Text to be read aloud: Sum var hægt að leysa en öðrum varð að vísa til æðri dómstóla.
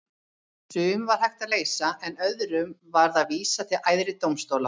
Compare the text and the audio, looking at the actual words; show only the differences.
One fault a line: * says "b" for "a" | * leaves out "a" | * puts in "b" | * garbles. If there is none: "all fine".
all fine